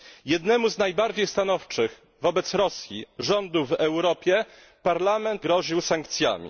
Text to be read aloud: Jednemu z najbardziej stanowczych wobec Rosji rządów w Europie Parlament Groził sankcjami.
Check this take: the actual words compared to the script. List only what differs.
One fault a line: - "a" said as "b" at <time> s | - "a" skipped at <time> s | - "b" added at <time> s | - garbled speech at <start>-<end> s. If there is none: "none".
none